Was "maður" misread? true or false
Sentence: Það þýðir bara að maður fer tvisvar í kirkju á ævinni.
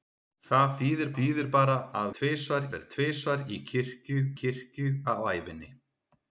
true